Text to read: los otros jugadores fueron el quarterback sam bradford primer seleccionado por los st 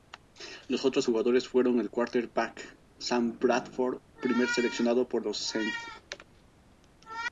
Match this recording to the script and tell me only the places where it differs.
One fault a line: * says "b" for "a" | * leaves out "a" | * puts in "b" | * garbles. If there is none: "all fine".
all fine